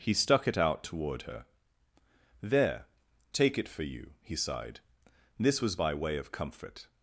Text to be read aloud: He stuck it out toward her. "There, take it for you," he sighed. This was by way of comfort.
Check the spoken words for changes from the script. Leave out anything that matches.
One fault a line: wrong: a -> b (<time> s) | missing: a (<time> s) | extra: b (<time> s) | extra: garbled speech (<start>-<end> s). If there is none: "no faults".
no faults